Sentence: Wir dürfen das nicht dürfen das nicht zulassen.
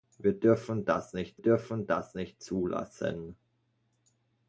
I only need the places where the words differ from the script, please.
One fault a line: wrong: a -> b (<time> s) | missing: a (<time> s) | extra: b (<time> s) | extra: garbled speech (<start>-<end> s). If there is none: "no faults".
no faults